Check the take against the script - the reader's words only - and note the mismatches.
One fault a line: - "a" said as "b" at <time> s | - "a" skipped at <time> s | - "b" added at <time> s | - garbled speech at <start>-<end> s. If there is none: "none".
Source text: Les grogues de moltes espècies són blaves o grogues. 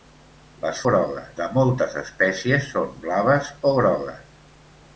none